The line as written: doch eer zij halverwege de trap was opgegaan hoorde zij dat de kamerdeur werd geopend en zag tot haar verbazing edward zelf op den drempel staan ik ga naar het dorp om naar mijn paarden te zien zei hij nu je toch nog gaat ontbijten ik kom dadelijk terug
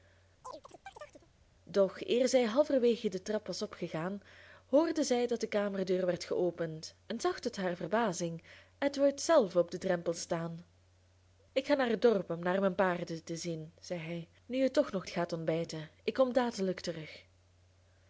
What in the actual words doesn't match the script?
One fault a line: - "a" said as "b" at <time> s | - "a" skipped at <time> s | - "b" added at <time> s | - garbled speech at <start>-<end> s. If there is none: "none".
none